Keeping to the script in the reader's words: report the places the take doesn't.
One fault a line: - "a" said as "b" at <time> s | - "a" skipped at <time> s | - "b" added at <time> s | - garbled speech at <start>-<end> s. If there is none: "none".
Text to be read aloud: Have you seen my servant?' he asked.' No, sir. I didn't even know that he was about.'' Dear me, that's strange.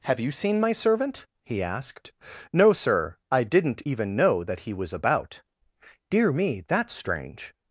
none